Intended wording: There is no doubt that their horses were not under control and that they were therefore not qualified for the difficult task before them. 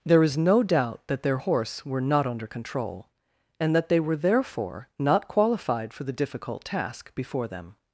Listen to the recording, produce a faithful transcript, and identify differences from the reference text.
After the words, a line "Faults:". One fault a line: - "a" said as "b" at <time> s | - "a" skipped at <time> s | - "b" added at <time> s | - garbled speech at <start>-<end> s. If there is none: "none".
There is no doubt that their horse were not under control and that they were therefore not qualified for the difficult task before them.
Faults:
- "horses" said as "horse" at 1.4 s